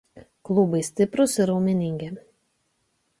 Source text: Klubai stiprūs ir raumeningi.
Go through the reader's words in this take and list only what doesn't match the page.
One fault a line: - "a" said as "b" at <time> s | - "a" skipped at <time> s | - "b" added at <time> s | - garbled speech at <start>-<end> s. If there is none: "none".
none